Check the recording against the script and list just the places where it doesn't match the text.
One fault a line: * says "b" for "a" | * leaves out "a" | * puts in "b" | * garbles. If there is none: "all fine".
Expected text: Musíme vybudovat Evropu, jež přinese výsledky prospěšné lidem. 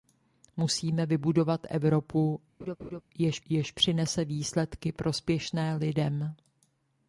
* puts in "jež"